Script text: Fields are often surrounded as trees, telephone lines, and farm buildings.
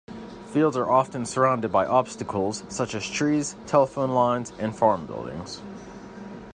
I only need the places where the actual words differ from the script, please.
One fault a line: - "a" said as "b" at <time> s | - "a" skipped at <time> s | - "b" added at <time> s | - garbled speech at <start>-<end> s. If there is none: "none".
- "by obstacles such" added at 1.7 s